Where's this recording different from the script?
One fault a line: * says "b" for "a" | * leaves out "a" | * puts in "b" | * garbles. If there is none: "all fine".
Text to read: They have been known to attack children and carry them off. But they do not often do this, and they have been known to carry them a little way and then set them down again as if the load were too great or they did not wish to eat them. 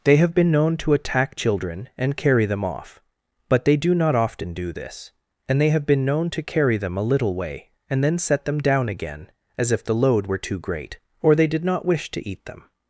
all fine